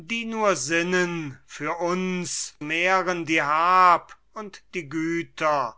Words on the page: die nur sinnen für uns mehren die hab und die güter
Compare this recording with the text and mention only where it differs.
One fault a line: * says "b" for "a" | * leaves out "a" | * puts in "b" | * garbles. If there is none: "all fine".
all fine